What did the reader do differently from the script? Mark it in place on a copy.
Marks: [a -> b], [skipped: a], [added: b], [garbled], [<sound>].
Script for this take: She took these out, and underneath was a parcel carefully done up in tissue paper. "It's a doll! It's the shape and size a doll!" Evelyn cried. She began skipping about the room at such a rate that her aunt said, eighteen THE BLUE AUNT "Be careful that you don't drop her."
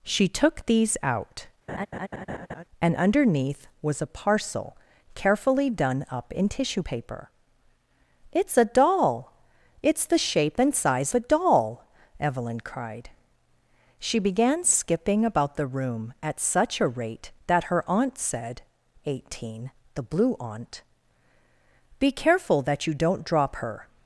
She took these out, [laugh] and underneath was a parcel carefully done up in tissue paper. "It's a doll! It's the shape and size a doll!" Evelyn cried. She began skipping about the room at such a rate that her aunt said, eighteen THE BLUE AUNT "Be careful that you don't drop her."